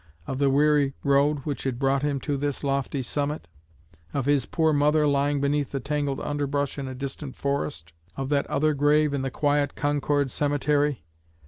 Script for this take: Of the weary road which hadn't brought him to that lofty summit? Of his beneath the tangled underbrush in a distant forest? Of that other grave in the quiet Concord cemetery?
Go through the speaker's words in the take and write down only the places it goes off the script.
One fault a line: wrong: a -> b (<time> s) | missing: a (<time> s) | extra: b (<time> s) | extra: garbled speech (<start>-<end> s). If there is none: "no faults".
wrong: hadn't -> had (1.6 s)
wrong: that -> this (2.4 s)
extra: poor mother lying (4.5 s)